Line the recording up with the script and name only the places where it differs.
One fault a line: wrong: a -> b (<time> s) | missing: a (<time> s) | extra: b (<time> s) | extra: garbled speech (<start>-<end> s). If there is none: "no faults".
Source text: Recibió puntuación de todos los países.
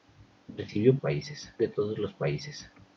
wrong: puntuación -> países (1.0 s)